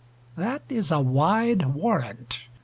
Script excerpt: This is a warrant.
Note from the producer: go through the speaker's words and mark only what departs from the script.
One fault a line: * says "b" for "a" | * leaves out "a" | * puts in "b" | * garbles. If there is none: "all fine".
* says "That" for "This"
* puts in "wide"